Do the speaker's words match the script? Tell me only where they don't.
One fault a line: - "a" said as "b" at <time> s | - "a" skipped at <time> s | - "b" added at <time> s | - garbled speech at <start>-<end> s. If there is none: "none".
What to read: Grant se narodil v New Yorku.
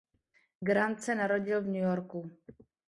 none